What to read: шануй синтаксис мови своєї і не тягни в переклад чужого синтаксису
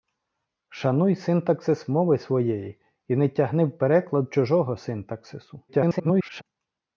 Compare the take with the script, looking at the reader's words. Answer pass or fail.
fail